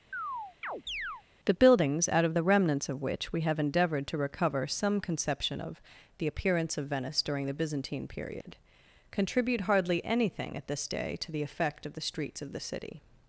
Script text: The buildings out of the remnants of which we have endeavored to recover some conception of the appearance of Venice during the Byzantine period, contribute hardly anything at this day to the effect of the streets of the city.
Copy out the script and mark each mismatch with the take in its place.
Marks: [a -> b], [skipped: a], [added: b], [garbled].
The buildings out of the remnants of which we have endeavored to recover some conception of the appearance of Venice during the Byzantine period, contribute hardly anything at this day to the effect of the streets of the city.